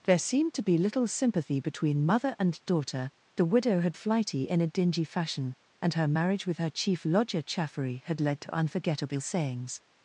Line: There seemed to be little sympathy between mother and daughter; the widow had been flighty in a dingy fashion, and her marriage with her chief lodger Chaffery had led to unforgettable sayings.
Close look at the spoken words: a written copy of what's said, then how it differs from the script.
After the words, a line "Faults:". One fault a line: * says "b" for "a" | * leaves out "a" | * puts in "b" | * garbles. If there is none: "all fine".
There seemed to be little sympathy between mother and daughter; the widow had flighty in a dingy fashion, and her marriage with her chief lodger Chaffery had led to unforgettable sayings.
Faults:
* leaves out "been"